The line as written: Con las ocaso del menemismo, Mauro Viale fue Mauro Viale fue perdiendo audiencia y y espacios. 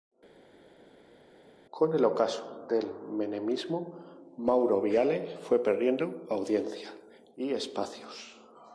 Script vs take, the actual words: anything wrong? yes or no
yes